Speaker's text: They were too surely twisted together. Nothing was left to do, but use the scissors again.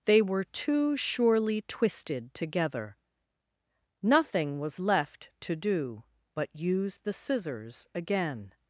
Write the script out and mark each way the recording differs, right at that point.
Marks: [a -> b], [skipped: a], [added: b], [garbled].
They were too surely twisted together. Nothing was left to do, but use the scissors again.